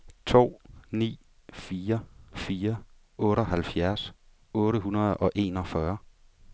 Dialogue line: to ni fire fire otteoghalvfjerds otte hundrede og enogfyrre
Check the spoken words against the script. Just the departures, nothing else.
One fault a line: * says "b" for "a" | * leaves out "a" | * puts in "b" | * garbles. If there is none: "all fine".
all fine